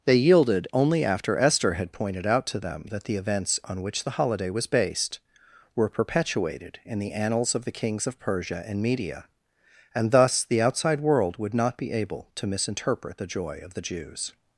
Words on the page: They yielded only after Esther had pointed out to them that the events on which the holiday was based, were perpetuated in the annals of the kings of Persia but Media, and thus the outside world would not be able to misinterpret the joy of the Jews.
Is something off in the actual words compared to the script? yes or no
yes